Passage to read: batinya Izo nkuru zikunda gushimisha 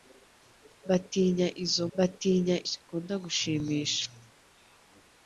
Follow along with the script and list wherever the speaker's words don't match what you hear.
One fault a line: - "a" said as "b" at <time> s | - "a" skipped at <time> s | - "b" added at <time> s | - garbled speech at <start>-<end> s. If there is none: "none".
- "nkuru" said as "batinya" at 2.0 s